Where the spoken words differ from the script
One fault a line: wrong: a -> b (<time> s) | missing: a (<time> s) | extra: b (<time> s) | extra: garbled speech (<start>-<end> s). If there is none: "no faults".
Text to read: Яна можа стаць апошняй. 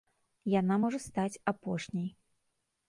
no faults